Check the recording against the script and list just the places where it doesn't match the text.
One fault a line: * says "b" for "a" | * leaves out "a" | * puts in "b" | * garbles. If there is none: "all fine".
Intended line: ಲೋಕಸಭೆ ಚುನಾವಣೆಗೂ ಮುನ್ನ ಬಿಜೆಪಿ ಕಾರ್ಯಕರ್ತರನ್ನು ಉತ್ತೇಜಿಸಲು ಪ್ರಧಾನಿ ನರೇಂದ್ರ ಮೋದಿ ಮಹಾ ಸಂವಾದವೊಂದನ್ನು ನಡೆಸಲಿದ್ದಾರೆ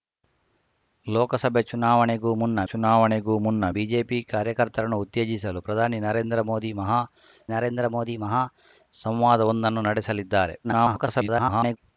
* puts in "ಚುನಾವಣೆಗೂ ಮುನ್ನ"
* puts in "ನರೇಂದ್ರ ಮೋದಿ ಮಹಾ"
* garbles